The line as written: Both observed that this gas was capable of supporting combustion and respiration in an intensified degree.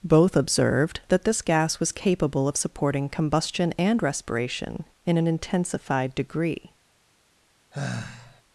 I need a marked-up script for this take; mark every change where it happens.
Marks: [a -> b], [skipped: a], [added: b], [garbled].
Both observed that this gas was capable of supporting combustion and respiration in an intensified degree.